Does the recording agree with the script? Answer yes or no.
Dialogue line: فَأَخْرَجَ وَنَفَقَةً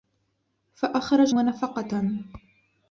yes